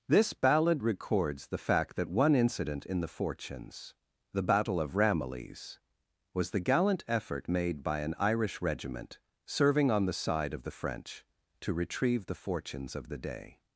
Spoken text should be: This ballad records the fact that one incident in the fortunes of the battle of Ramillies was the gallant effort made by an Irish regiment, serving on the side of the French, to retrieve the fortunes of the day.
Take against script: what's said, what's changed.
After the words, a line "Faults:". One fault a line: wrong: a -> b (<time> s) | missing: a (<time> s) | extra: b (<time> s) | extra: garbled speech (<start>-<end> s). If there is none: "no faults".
This ballad records the fact that one incident in the fortunes the battle of Ramillies was the gallant effort made by an Irish regiment, serving on the side of the French, to retrieve the fortunes of the day.
Faults:
missing: of (3.9 s)